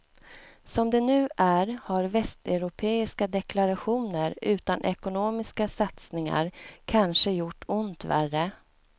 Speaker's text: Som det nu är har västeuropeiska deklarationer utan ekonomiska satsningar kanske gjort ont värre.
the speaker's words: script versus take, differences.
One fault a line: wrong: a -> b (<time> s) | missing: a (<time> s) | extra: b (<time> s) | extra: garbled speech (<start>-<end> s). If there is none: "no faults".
no faults